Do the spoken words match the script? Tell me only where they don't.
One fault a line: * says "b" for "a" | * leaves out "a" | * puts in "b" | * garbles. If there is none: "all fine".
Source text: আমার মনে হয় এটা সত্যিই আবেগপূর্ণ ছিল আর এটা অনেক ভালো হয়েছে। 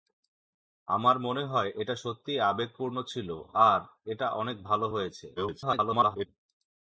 * garbles